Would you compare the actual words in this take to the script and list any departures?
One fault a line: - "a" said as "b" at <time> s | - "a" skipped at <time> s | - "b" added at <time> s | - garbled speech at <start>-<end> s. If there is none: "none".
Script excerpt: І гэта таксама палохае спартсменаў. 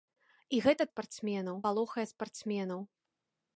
- "таксама" said as "спартсменаў" at 0.9 s